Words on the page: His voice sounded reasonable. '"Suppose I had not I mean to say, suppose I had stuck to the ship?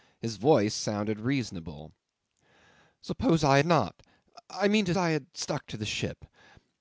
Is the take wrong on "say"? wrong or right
wrong